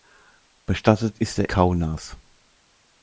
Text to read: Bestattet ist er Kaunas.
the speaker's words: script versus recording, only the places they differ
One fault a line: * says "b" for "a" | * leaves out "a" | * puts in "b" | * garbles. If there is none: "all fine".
all fine